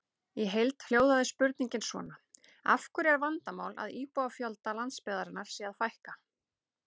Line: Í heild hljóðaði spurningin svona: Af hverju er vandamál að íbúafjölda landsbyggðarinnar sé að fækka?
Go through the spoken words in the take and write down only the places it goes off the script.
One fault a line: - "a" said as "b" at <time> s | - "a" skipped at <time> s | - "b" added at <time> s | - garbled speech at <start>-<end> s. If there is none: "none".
none